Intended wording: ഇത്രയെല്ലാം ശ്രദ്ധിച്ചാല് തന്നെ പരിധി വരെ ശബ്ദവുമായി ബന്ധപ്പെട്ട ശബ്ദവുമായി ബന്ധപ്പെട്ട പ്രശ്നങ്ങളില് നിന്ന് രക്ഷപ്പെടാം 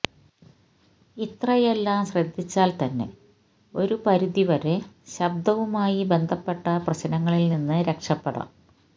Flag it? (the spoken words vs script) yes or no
yes